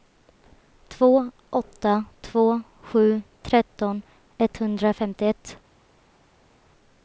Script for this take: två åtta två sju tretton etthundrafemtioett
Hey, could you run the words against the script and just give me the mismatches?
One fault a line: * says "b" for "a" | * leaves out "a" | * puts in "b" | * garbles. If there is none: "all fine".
all fine